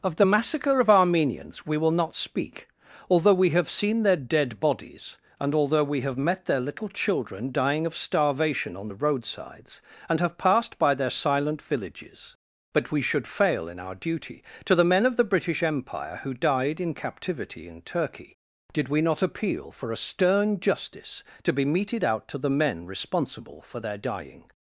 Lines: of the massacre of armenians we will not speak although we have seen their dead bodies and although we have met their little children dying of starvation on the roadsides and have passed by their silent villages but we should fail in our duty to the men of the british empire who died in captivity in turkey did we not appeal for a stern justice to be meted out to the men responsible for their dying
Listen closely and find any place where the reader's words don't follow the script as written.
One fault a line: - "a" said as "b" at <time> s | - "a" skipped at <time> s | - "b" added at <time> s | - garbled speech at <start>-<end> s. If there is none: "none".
none